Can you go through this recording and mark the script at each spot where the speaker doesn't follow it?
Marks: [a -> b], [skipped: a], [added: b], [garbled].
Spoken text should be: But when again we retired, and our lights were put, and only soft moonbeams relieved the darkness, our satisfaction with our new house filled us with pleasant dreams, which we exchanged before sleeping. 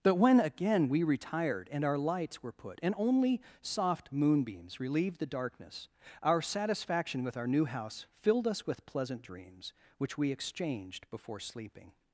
But when again we retired, and our lights were put, and only soft moonbeams relieved the darkness, our satisfaction with our new house filled us with pleasant dreams, which we exchanged before sleeping.